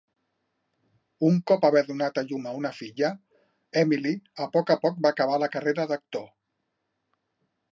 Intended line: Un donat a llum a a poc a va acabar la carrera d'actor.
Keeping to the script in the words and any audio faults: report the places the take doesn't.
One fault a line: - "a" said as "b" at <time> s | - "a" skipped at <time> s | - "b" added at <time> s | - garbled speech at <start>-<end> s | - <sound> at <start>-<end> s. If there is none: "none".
- "cop haver" added at 1.5 s
- "una filla Emily" added at 2.6 s
- "poc" added at 4.9 s